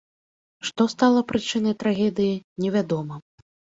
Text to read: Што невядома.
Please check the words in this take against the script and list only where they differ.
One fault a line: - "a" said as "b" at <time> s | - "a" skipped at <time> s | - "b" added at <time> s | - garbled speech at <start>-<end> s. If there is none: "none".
- "стала прычынай трагедыі" added at 0.9 s